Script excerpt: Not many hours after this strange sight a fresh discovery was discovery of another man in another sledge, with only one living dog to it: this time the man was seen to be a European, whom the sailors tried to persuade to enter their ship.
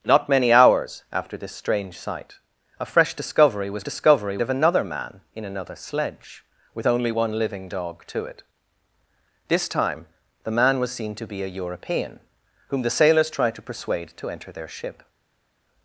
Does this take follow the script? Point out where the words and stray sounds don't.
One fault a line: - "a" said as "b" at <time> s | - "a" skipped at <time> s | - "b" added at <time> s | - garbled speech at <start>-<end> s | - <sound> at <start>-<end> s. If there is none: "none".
none